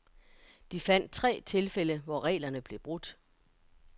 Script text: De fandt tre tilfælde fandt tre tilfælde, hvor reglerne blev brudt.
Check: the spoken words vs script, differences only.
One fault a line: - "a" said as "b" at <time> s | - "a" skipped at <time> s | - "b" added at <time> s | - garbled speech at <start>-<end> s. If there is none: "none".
- "fandt tre tilfælde" skipped at 2.0 s